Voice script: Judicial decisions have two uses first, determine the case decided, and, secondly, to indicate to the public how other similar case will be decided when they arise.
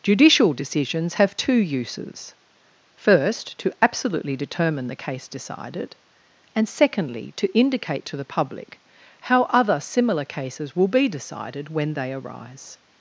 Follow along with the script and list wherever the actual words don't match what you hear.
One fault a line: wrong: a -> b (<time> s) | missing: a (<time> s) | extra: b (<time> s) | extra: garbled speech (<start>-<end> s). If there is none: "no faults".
extra: to absolutely (3.6 s)
wrong: case -> cases (10.2 s)